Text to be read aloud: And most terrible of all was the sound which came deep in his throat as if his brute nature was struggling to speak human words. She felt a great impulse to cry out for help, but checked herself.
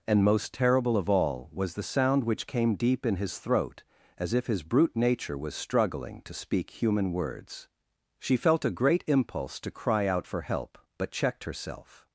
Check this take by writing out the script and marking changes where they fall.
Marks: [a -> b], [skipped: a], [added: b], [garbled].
And most terrible of all was the sound which came deep in his throat as if his brute nature was struggling to speak human words. She felt a great impulse to cry out for help, but checked herself.